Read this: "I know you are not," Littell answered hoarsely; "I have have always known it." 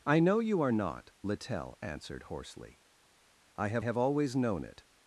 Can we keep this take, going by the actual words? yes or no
yes